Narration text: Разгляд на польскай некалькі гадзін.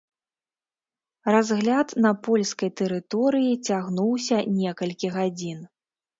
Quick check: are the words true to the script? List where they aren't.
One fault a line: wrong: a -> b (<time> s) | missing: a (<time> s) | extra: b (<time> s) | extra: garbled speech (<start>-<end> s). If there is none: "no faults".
extra: тэрыторыі цягнуўся (2.8 s)